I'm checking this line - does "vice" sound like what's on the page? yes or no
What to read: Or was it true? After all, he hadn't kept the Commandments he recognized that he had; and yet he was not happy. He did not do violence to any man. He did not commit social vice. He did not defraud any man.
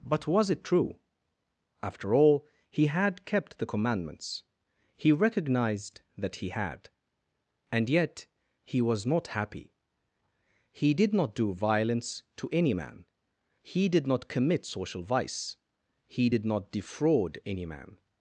yes